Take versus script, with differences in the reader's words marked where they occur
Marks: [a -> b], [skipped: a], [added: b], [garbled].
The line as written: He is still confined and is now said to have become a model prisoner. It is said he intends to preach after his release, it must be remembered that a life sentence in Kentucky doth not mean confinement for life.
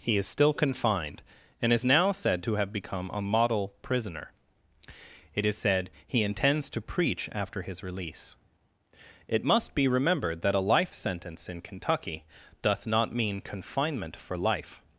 He is still confined and is now said to have become a model prisoner. It is said he intends to preach after his release, it must be remembered that a life sentence in Kentucky doth not mean confinement for life.